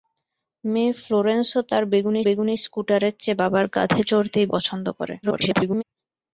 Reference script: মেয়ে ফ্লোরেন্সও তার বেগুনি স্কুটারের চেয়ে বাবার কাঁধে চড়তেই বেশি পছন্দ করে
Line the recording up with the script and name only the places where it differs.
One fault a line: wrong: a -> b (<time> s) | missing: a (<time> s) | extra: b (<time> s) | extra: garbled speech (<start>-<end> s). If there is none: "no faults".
extra: বেগুনি (2.2 s)
missing: বেশি (4.5 s)
extra: garbled speech (5.2-5.8 s)